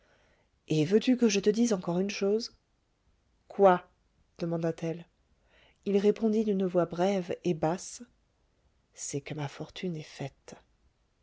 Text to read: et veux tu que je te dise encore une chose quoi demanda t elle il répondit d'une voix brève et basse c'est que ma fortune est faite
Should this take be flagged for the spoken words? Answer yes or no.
no